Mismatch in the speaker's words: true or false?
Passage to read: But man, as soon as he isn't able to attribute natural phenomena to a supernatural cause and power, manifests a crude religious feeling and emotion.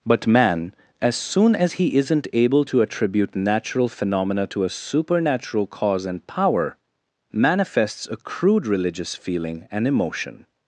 false